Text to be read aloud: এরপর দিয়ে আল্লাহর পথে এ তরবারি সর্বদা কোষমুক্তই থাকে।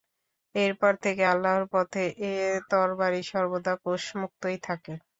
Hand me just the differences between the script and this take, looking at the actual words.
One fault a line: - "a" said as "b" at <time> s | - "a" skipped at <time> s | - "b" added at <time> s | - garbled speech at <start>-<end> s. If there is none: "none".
- "দিয়ে" said as "থেকে" at 1.0 s